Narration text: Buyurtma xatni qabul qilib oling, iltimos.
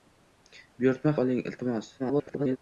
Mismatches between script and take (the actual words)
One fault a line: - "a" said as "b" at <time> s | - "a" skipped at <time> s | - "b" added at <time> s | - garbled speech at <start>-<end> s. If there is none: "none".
- "xatni qabul qilib" skipped at 1.1 s
- garbled speech at 2.0-2.6 s